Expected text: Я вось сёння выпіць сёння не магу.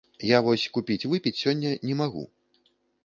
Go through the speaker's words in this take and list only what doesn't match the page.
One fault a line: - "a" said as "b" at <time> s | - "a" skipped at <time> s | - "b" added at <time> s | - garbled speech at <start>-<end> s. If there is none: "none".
- "сёння" said as "купіць" at 0.8 s